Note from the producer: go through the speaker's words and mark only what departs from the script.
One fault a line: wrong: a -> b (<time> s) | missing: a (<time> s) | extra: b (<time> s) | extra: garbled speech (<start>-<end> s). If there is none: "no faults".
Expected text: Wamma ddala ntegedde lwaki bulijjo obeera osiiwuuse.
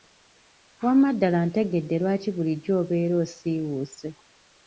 no faults